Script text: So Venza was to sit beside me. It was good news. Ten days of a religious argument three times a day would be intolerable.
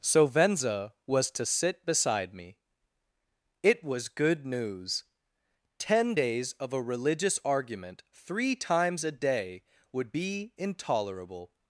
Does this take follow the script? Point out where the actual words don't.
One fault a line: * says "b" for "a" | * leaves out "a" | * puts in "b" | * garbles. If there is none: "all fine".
all fine